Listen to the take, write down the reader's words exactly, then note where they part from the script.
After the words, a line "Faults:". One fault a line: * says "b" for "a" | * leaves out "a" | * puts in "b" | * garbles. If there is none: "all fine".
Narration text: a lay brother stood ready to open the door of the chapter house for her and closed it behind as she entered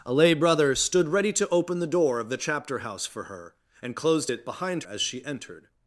a lay brother stood ready to open the door of the chapter house for her and closed it behind as she entered
Faults:
all fine